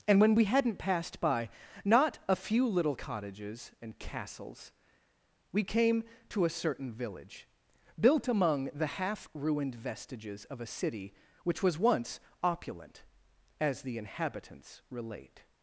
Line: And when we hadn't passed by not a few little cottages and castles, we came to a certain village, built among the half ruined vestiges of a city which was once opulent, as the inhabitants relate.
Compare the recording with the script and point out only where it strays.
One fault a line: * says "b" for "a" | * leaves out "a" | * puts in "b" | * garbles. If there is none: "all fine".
all fine